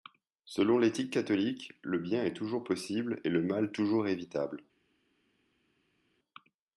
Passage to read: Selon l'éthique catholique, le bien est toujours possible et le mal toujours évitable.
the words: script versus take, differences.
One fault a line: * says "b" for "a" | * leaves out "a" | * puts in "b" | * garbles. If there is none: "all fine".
all fine